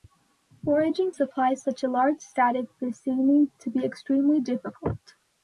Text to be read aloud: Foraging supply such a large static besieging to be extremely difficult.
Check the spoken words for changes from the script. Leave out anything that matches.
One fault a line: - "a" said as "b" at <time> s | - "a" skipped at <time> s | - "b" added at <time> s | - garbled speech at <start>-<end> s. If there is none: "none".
none